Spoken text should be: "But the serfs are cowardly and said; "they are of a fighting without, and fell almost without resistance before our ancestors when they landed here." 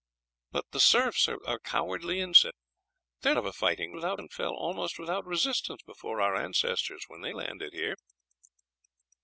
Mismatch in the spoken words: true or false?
false